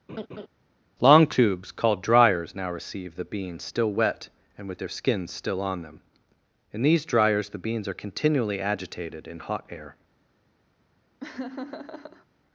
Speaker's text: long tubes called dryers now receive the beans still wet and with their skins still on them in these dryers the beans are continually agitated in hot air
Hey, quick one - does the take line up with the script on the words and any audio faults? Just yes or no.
no